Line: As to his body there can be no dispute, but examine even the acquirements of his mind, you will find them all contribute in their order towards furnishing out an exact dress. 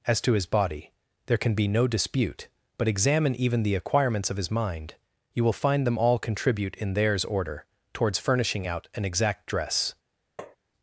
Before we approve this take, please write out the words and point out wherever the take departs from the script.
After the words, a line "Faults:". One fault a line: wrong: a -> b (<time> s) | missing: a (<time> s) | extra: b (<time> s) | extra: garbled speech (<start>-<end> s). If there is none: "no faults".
As to his body there can be no dispute, but examine even the acquirements of his mind, you will find them all contribute in theirs order towards furnishing out an exact dress.
Faults:
wrong: their -> theirs (6.9 s)